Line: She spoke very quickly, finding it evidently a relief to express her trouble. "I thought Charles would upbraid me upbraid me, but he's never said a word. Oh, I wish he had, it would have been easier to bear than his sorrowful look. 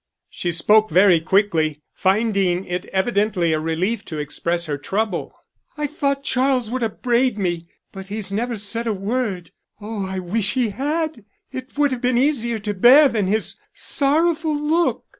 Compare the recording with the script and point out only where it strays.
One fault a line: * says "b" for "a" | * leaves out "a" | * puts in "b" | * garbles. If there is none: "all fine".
* leaves out "upbraid me"